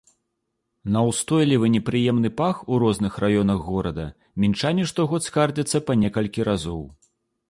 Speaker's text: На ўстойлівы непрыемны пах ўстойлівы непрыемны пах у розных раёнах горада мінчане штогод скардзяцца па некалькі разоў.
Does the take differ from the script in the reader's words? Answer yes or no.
yes